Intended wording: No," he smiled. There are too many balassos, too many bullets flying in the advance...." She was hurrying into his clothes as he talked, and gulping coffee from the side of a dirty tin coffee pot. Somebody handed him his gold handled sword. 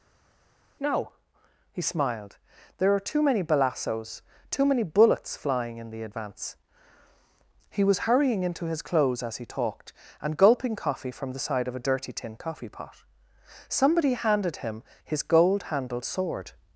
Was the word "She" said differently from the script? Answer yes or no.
yes